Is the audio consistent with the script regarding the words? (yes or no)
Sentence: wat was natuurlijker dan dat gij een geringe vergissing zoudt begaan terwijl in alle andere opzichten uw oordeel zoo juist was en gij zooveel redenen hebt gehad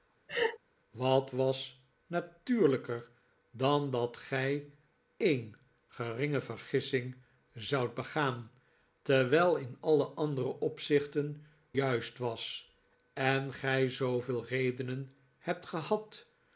no